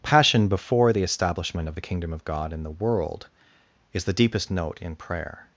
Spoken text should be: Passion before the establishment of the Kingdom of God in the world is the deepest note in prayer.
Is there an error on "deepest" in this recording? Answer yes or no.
no